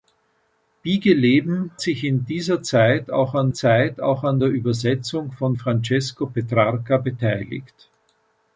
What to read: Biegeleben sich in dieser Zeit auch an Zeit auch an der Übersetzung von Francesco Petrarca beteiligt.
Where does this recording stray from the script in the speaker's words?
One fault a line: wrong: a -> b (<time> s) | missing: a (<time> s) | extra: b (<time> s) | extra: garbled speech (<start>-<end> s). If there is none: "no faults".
no faults